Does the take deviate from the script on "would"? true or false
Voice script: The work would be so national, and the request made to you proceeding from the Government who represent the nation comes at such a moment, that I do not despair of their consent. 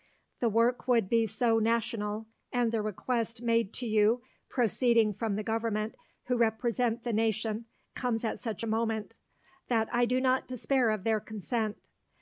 false